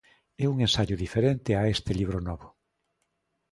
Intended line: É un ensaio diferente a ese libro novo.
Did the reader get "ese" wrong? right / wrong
wrong